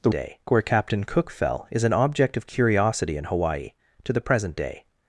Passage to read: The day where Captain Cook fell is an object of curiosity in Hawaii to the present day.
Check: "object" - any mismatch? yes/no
no